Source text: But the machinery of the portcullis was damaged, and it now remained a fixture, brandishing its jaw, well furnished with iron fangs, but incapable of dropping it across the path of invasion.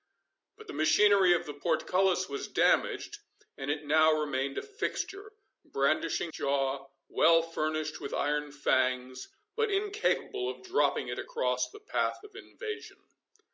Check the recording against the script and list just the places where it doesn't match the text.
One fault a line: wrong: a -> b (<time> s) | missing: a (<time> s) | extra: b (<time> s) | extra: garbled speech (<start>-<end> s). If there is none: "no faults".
missing: its (6.3 s)